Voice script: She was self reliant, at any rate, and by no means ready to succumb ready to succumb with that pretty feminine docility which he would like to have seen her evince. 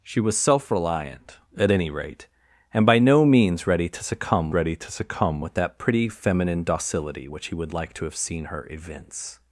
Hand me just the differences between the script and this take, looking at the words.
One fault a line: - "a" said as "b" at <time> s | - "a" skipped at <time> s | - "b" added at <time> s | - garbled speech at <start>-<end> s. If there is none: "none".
none